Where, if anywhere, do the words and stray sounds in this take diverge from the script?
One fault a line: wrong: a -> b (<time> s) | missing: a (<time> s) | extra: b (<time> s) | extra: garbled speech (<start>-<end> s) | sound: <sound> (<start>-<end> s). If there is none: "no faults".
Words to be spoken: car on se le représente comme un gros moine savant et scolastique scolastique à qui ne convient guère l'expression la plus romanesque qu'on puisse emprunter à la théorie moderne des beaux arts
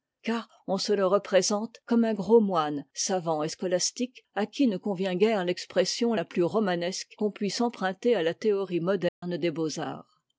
missing: scolastique (4.2 s)
sound: dropout (9.1-9.2 s)